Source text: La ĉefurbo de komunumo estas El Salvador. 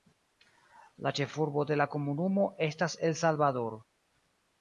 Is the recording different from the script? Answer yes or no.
yes